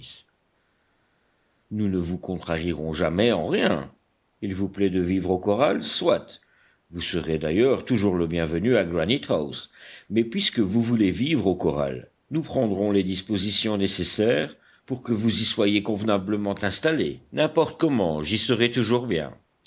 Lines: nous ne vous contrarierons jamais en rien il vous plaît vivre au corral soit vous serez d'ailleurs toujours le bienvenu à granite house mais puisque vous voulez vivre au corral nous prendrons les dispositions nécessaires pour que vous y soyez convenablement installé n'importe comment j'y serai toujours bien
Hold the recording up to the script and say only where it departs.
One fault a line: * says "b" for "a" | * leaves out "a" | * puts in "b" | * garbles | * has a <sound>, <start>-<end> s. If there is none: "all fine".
* puts in "de"